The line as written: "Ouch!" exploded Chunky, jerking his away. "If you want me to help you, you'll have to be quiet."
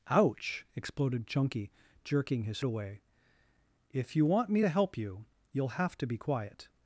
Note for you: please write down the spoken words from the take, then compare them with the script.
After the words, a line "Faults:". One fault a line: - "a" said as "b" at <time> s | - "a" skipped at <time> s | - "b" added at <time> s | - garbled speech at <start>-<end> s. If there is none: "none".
"Ouch!" exploded Chunky, jerking his away. "If you want me to help you, you'll have to be quiet."
Faults:
none